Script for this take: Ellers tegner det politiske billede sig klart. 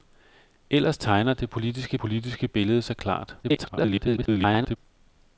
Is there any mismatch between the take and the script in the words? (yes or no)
yes